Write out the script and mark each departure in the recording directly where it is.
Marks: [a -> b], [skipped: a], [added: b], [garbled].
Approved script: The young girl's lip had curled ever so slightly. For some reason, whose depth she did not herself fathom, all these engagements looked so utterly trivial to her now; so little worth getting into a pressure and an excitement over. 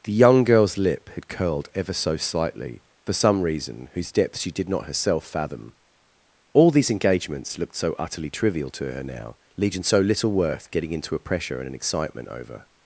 The young girl's lip had curled ever so slightly. For some reason, whose depth she did not herself fathom, all these engagements looked so utterly trivial to her now; [added: legion] so little worth getting into a pressure and an excitement over.